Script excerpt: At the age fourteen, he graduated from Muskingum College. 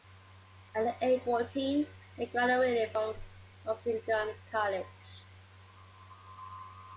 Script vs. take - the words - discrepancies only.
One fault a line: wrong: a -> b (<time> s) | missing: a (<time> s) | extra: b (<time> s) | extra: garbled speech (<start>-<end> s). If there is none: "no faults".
no faults